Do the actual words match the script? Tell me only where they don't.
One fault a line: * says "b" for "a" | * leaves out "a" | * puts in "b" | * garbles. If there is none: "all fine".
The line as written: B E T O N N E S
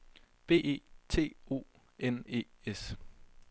* leaves out "N"